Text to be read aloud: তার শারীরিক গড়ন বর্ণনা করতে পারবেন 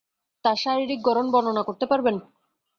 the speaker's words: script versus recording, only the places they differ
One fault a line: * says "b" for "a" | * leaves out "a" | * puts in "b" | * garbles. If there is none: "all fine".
all fine